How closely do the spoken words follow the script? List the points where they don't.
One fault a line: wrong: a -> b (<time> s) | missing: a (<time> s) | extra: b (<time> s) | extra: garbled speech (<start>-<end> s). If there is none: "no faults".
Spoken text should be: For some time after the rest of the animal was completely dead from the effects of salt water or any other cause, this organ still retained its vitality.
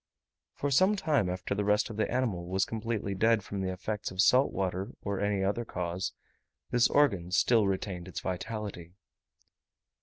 no faults